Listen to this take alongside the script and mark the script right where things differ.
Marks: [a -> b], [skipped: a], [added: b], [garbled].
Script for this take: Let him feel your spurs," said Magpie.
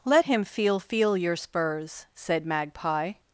Let him feel [added: feel] your spurs," said Magpie.